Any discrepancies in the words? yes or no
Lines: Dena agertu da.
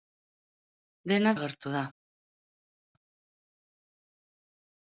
no